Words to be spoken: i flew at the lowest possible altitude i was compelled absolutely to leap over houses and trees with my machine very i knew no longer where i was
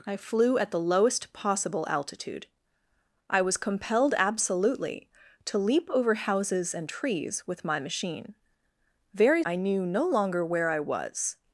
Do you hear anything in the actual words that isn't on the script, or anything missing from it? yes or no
no